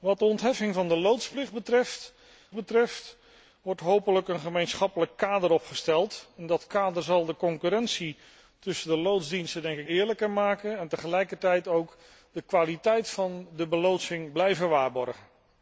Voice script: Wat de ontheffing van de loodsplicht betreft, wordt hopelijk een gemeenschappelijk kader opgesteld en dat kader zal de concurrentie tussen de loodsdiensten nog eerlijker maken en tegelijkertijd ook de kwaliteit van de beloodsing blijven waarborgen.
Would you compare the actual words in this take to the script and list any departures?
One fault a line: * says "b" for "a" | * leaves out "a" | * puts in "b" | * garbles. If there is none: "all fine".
* puts in "betreft"
* leaves out "nog"